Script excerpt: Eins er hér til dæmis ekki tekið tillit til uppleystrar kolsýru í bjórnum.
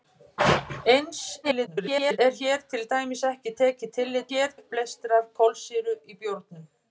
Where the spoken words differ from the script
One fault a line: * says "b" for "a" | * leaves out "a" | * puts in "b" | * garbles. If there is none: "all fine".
* garbles
* says "hér" for "til"